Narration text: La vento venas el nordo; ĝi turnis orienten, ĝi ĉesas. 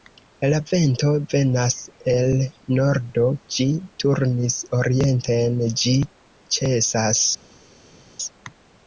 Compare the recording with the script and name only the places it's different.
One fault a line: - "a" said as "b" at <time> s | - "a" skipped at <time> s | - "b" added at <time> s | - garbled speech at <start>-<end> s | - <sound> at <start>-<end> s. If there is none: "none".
none